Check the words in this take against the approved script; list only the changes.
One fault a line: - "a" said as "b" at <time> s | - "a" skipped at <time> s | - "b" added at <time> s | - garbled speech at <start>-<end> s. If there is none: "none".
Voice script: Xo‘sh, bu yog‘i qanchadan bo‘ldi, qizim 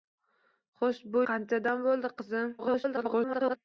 - "yog‘i" skipped at 1.2 s
- garbled speech at 2.6-3.6 s